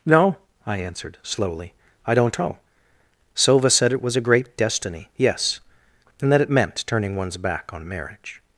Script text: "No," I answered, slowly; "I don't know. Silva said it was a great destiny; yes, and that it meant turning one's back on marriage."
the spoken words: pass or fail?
pass